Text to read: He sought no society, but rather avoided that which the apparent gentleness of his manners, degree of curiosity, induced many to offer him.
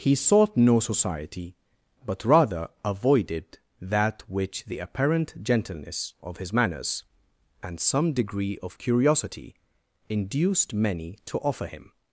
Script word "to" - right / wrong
right